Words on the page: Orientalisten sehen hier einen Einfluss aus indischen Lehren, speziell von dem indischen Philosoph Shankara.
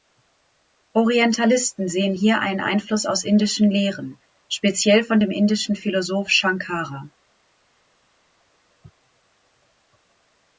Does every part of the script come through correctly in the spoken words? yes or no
yes